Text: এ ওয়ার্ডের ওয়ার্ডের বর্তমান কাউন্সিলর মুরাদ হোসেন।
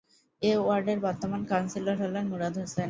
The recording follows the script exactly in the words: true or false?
false